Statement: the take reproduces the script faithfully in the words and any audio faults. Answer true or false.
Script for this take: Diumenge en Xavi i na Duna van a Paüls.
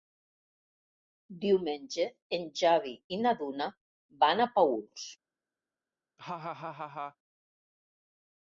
false